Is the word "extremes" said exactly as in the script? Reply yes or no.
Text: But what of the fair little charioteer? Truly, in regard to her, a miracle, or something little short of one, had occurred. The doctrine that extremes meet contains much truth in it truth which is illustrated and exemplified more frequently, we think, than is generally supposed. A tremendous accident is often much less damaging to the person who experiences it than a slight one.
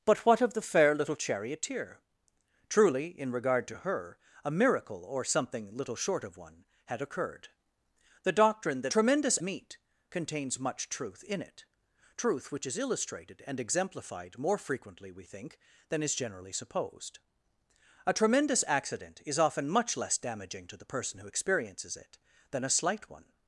no